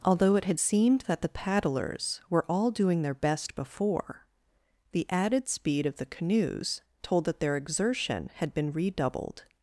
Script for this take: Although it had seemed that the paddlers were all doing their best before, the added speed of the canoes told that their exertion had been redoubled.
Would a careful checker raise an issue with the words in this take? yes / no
no